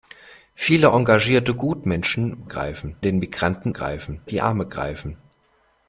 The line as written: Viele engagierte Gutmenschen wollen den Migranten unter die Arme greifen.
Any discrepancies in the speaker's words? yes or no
yes